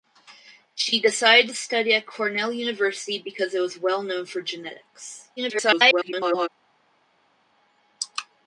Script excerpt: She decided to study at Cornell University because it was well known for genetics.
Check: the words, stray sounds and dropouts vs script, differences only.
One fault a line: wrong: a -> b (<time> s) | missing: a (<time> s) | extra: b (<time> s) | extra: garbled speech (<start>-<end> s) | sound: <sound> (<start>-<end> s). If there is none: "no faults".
extra: garbled speech (5.4-6.5 s)